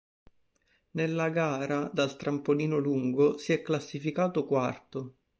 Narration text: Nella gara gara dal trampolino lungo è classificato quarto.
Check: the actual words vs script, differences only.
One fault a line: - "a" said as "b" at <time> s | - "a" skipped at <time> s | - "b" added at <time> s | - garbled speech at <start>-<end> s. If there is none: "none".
- "gara" skipped at 1.9 s
- "si" added at 3.4 s